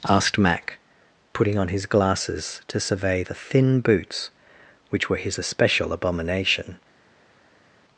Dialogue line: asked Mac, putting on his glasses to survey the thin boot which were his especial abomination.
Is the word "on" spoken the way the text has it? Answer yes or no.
yes